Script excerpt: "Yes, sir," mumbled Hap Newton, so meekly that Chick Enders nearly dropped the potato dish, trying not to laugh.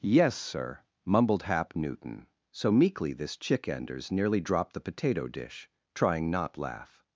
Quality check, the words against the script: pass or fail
fail